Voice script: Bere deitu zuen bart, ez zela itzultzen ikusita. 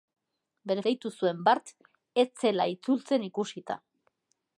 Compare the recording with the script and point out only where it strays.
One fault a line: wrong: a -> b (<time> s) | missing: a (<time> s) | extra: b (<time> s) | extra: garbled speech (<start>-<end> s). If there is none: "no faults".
no faults